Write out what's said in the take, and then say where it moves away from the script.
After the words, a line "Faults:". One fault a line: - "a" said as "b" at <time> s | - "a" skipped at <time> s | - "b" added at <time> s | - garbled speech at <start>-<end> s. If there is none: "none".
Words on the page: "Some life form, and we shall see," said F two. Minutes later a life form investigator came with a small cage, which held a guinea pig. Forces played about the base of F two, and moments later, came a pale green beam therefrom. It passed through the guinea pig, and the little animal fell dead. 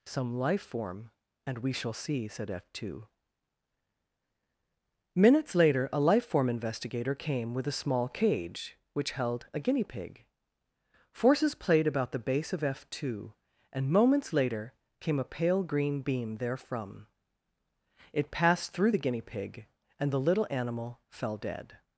"Some life form, and we shall see," said F two. Minutes later a life form investigator came with a small cage, which held a guinea pig. Forces played about the base of F two, and moments later, came a pale green beam therefrom. It passed through the guinea pig, and the little animal fell dead.
Faults:
none